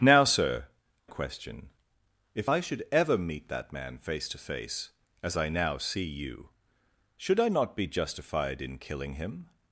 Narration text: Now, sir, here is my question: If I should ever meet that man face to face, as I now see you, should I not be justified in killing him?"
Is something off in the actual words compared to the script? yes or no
yes